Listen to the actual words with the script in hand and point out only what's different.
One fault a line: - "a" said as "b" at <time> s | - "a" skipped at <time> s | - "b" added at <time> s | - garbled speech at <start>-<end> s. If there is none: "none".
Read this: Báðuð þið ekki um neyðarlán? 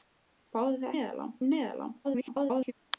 - "ekki" said as "neyðarlán" at 0.9 s
- garbled speech at 2.0-2.7 s